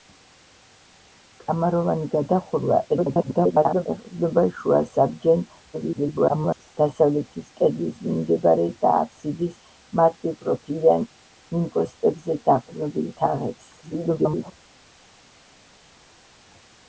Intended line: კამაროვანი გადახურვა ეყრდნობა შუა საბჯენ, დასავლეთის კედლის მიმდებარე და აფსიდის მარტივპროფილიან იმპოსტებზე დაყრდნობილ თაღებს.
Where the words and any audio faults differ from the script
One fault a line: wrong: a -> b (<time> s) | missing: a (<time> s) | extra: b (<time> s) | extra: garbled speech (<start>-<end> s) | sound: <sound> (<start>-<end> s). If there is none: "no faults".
extra: garbled speech (2.9-3.9 s)
extra: garbled speech (5.7-6.8 s)
extra: garbled speech (13.8-14.5 s)